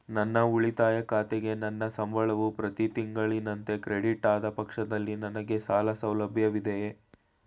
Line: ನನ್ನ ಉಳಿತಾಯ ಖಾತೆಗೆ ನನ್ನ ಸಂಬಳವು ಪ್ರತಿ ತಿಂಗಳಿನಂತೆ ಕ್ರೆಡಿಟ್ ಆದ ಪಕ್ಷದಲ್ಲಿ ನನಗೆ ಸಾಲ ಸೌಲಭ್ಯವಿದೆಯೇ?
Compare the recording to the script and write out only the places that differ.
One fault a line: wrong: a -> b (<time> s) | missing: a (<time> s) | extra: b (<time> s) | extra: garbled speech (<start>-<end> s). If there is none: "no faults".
no faults